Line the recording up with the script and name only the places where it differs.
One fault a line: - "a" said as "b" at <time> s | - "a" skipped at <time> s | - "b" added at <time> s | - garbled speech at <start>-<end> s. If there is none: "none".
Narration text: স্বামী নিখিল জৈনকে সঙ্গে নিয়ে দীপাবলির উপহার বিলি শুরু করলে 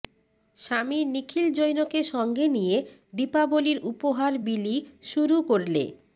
none